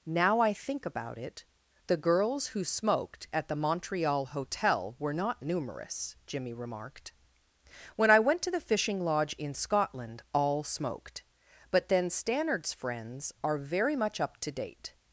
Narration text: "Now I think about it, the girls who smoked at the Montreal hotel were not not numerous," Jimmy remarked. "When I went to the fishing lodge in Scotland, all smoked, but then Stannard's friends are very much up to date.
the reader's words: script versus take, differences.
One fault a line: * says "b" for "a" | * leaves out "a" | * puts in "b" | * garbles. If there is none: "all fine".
* leaves out "not"